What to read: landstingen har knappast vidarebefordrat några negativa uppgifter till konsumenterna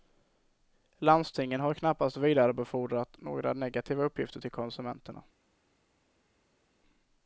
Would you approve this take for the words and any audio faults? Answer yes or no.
yes